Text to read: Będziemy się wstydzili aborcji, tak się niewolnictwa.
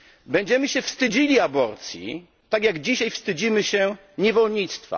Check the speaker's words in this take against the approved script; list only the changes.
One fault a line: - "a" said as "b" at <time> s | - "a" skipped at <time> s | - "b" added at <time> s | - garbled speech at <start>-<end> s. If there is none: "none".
- "jak dzisiaj wstydzimy" added at 2.6 s